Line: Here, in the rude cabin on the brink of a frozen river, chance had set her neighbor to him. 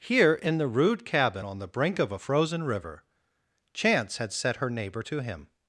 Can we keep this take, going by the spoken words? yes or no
yes